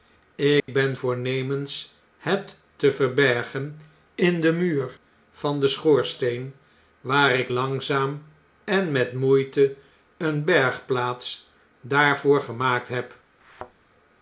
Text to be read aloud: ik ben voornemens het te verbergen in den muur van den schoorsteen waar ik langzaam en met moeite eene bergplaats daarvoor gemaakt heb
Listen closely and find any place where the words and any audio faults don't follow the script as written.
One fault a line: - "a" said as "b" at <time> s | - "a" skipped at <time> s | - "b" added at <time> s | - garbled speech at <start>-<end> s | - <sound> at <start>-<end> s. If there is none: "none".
- dropout at 0.6-0.7 s
- thud at 13.4-13.7 s